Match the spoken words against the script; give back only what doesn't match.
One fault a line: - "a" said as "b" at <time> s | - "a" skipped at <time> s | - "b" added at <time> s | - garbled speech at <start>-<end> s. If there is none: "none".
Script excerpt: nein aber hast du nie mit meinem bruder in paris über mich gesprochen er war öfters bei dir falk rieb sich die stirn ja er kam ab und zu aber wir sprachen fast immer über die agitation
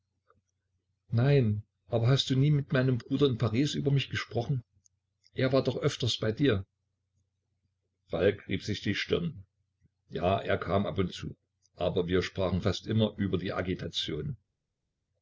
- "doch" added at 5.6 s